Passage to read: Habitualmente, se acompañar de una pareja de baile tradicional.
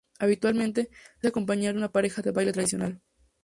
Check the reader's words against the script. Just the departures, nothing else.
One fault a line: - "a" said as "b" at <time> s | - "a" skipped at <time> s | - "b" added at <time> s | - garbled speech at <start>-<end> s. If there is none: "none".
none